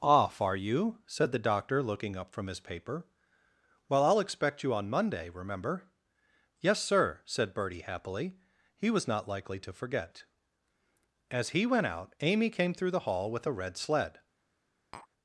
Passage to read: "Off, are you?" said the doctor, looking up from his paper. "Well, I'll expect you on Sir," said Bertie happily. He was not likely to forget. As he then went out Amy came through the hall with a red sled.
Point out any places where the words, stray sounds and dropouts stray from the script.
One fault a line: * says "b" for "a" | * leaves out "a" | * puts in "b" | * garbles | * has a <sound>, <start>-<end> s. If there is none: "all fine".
* puts in "Monday remember Yes"
* leaves out "then"
* has a tap, 14.9-15.1 s